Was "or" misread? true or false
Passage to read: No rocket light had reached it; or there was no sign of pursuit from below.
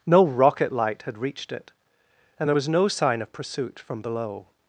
true